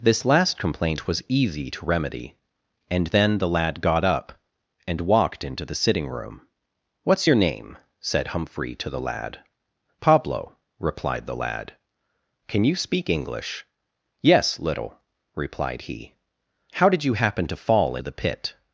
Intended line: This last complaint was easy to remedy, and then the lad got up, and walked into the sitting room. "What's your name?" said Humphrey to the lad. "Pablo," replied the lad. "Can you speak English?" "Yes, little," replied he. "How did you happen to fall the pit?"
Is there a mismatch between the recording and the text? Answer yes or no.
no